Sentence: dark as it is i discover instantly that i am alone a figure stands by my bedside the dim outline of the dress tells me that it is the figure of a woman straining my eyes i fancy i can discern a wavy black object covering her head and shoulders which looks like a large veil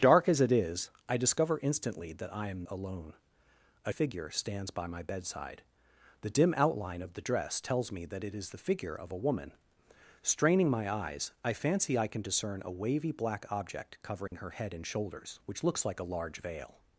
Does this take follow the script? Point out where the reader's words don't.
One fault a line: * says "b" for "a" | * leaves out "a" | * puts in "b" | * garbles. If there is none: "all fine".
all fine